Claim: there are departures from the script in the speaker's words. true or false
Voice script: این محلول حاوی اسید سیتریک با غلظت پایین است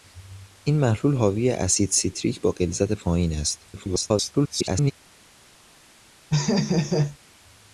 true